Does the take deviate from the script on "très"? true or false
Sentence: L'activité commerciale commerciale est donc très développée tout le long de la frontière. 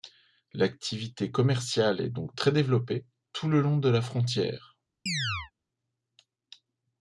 false